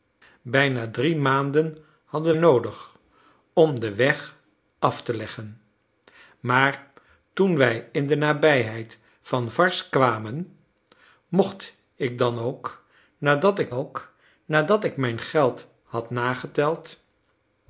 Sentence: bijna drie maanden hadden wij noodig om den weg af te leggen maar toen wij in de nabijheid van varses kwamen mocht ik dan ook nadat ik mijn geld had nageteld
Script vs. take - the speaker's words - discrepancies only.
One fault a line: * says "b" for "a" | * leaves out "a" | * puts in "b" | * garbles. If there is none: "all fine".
* leaves out "wij"
* puts in "ook nadat ik"